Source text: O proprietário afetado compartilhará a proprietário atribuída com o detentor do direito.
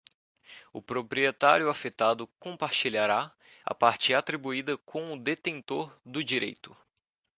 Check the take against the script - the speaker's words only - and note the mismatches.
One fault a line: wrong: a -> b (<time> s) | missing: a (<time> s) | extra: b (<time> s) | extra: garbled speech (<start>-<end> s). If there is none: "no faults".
wrong: proprietário -> parte (3.7 s)